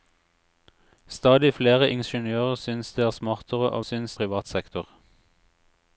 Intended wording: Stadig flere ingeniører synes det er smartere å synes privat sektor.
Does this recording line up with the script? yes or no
yes